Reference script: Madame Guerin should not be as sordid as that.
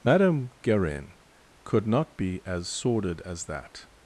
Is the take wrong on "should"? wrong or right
wrong